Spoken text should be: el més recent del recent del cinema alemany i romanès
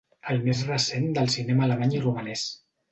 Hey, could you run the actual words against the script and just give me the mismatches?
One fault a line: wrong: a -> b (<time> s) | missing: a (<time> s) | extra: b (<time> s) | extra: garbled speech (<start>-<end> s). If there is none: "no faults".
missing: recent del (1.3 s)